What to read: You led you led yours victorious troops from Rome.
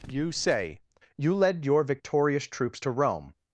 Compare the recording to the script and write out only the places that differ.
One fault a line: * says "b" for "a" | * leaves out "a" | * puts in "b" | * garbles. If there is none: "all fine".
* says "say" for "led"
* says "your" for "yours"
* says "to" for "from"